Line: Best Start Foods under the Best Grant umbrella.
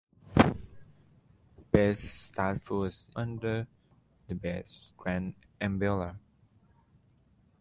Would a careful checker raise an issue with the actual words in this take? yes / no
no